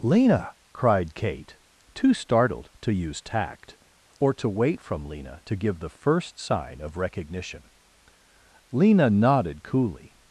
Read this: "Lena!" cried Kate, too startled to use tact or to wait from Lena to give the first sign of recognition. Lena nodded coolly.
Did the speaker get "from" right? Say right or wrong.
right